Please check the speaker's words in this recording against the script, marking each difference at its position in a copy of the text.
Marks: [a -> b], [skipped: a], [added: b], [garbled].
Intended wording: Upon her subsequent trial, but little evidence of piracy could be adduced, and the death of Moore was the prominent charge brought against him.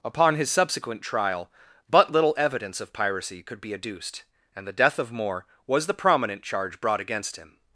Upon [her -> his] subsequent trial, but little evidence of piracy could be adduced, and the death of Moore was the prominent charge brought against him.